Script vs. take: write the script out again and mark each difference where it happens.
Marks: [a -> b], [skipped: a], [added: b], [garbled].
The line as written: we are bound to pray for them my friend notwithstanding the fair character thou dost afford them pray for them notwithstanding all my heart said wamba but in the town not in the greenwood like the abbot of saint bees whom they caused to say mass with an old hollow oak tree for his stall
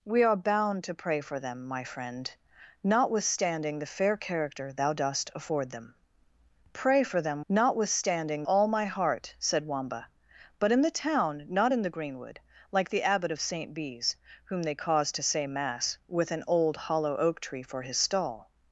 we are bound to pray for them my friend notwithstanding the fair character thou dost afford them pray for them notwithstanding all my heart said wamba but in the town not in the greenwood like the abbot of saint bees whom they caused to say mass with an old hollow oak tree for his stall